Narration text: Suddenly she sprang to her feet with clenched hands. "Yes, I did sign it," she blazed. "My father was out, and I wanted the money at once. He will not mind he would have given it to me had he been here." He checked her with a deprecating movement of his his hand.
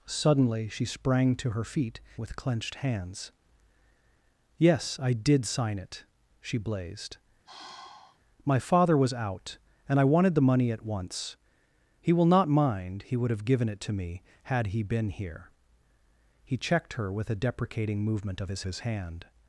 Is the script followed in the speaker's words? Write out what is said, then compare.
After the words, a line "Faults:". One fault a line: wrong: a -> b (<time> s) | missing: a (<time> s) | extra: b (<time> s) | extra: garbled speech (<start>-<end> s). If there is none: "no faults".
Suddenly she sprang to her feet with clenched hands. "Yes, I did sign it," she blazed. "My father was out, and I wanted the money at once. He will not mind he would have given it to me had he been here." He checked her with a deprecating movement of his his hand.
Faults:
no faults